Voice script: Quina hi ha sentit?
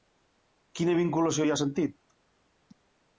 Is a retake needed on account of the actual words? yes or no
yes